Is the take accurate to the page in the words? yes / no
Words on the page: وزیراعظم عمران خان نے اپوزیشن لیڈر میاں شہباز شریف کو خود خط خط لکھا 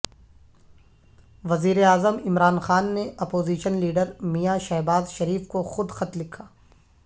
no